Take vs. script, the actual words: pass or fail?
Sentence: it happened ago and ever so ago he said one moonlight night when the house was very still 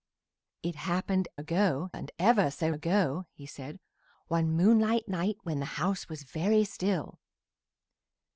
pass